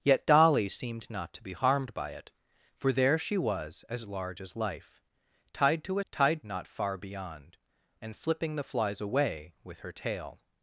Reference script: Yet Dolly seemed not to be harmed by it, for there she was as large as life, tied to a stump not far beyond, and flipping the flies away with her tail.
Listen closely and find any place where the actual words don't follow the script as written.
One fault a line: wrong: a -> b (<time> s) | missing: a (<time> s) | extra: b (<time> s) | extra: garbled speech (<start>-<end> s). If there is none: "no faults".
wrong: stump -> tied (6.1 s)